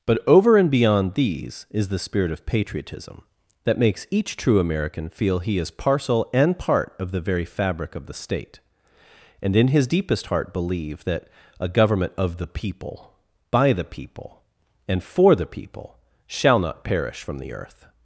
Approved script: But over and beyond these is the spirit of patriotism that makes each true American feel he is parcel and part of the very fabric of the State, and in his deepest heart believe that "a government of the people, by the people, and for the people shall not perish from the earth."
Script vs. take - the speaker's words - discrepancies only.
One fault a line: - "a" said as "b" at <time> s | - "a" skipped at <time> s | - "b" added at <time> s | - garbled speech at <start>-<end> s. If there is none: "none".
none